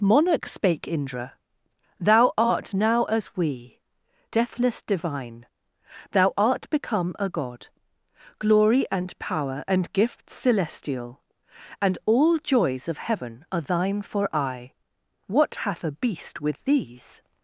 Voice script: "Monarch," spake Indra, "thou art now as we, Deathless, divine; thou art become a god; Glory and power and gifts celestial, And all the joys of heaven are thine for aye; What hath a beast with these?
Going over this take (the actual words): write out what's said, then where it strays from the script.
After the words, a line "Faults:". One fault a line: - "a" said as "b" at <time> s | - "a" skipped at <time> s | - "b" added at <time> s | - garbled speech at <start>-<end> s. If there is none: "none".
"Monarch," spake Indra, "thou art now as we, Deathless, divine; thou art become a god; Glory and power and gifts celestial, And all joys of heaven are thine for aye; What hath a beast with these?
Faults:
- "the" skipped at 12.4 s